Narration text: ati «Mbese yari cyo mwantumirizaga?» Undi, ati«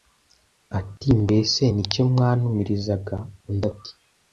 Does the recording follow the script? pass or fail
fail